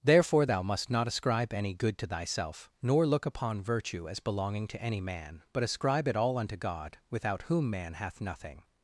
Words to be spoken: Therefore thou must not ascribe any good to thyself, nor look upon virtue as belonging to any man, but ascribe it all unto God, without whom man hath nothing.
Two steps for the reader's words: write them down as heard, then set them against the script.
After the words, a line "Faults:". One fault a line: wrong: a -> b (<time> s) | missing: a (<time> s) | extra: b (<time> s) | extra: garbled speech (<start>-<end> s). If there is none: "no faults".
Therefore thou must not ascribe any good to thyself, nor look upon virtue as belonging to any man, but ascribe it all unto God, without whom man hath nothing.
Faults:
no faults